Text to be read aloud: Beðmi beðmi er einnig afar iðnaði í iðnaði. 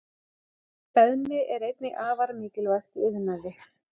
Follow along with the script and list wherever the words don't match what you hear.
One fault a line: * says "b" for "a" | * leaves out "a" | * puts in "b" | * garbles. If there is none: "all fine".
* leaves out "beðmi"
* says "mikilvægt" for "iðnaði"